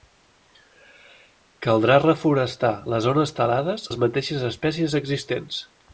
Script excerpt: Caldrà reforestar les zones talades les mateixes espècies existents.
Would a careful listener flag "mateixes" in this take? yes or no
no